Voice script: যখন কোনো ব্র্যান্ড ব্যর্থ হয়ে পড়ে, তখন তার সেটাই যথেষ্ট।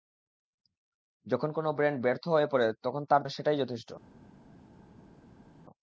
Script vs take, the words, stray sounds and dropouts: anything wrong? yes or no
no